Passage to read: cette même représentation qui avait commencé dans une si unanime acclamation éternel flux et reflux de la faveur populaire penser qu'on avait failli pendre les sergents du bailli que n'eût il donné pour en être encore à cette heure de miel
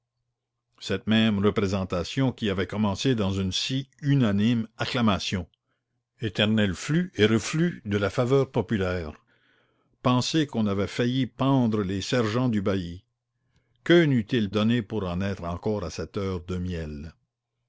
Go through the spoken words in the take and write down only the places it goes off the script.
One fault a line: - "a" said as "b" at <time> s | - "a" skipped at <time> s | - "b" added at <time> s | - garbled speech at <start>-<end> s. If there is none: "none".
none